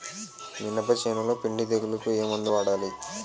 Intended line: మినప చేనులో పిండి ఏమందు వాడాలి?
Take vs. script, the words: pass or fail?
fail